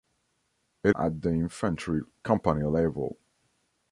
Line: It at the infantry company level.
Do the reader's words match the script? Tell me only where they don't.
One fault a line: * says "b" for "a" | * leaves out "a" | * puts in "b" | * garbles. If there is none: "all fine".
all fine